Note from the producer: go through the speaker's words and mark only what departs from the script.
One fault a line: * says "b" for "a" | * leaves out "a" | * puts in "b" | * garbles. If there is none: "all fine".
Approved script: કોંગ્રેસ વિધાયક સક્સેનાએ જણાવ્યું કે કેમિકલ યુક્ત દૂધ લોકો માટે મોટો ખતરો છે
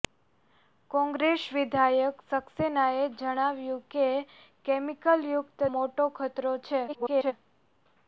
* leaves out "દૂધ લોકો માટે"
* garbles